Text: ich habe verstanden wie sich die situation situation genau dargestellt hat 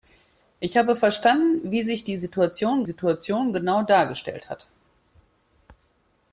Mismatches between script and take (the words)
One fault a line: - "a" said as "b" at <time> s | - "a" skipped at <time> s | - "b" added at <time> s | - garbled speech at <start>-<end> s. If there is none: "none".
none